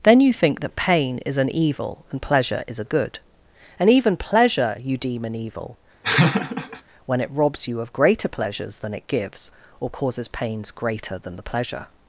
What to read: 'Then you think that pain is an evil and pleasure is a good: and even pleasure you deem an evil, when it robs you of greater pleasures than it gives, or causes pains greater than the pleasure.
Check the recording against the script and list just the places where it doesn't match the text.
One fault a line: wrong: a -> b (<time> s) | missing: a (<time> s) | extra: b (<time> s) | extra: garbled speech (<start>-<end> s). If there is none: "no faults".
no faults